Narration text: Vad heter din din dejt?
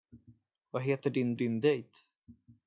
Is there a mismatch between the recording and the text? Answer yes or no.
no